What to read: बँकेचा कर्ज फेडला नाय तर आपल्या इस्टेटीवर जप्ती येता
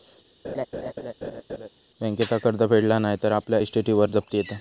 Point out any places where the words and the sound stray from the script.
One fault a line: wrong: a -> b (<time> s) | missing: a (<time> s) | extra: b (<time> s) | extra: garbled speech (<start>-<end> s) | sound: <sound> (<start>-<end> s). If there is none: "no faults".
sound: laugh (0.4-1.7 s)